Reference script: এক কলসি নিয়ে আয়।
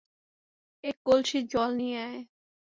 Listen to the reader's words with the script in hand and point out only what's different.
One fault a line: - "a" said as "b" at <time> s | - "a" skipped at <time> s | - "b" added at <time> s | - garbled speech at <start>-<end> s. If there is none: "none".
- "জল" added at 1.5 s